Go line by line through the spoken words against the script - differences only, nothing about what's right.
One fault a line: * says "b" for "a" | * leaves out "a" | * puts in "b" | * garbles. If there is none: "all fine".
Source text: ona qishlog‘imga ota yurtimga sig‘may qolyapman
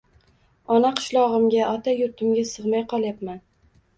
all fine